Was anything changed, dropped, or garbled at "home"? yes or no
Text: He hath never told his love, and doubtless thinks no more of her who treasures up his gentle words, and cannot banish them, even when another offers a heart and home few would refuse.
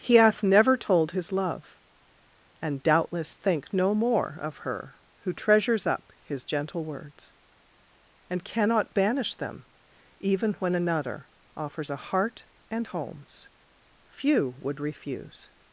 yes